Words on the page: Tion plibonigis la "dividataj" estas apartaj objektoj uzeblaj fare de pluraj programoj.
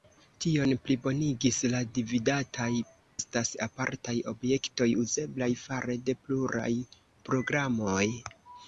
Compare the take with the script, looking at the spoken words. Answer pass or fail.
pass